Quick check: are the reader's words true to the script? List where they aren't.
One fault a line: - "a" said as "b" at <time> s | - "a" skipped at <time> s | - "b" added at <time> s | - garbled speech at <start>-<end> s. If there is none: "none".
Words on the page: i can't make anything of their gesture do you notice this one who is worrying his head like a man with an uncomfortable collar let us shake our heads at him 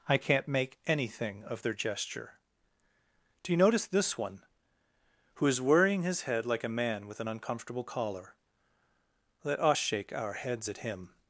none